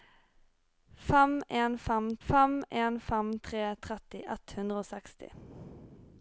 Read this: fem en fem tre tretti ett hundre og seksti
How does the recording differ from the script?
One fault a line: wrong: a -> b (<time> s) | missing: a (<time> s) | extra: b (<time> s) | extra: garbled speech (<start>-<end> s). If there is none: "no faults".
extra: fem en fem (2.3 s)